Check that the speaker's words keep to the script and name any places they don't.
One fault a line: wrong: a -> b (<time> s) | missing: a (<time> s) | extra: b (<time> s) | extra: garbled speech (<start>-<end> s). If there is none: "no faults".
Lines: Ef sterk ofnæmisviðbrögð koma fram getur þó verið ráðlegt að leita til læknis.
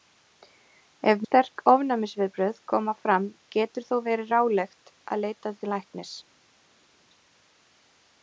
no faults